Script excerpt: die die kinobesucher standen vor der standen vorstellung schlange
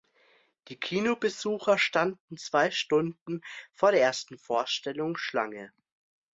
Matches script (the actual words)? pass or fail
fail